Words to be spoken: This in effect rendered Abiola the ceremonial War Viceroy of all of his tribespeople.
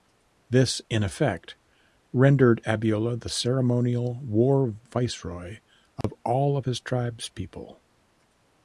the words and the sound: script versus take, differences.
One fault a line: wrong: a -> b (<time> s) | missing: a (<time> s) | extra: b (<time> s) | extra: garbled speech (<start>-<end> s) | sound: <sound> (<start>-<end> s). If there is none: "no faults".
sound: dropout (6.0-6.0 s)